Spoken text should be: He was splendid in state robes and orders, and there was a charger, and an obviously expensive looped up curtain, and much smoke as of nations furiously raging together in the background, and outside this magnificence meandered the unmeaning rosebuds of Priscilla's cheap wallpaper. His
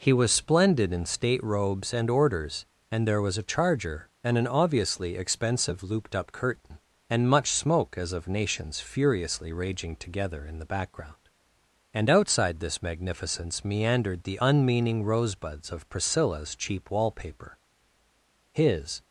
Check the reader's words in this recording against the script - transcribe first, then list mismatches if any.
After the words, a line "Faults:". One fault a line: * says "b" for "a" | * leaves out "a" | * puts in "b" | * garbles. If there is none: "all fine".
He was splendid in state robes and orders, and there was a charger, and an obviously expensive looped up curtain, and much smoke as of nations furiously raging together in the background, and outside this magnificence meandered the unmeaning rosebuds of Priscilla's cheap wallpaper. His
Faults:
all fine